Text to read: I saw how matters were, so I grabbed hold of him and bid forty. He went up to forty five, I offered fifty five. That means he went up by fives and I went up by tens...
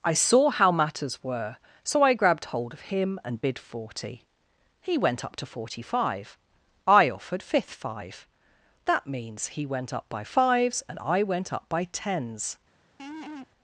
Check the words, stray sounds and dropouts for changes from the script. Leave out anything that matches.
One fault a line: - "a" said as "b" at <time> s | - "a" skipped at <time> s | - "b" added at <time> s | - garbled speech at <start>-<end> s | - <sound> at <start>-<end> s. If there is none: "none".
- "fifty" said as "fifth" at 7.4 s
- laugh at 13.0-13.5 s